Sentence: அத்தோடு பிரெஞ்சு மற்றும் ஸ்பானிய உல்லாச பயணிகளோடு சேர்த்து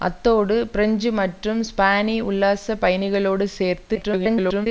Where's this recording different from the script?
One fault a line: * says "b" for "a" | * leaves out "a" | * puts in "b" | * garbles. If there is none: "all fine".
* garbles